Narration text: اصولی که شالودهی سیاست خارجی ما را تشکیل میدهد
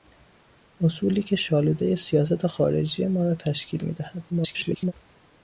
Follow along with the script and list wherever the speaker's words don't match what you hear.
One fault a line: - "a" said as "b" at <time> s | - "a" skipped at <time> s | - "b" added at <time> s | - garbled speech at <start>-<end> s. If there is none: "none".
- garbled speech at 4.3-4.9 s